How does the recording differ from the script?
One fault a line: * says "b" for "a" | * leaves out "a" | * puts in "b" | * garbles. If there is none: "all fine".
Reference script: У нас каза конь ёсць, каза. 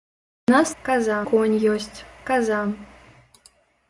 all fine